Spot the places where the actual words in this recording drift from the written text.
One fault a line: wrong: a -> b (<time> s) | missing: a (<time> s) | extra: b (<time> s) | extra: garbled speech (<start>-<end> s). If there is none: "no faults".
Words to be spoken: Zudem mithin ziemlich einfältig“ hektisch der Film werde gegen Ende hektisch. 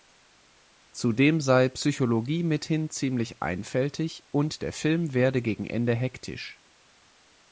extra: sei Psychologie (1.4 s)
wrong: hektisch -> und (4.3 s)